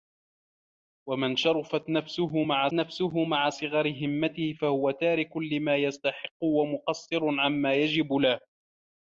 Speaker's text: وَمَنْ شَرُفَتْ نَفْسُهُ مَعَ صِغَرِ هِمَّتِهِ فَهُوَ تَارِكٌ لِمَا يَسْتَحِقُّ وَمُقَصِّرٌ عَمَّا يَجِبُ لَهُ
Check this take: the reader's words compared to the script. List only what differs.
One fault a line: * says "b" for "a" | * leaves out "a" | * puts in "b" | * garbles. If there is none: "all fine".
* puts in "نَفْسُهُ مَعَ"